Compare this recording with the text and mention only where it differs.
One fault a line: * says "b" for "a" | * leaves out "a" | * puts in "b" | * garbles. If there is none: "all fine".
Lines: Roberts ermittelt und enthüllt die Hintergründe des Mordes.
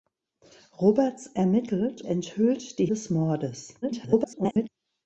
* leaves out "und"
* leaves out "Hintergründe"
* garbles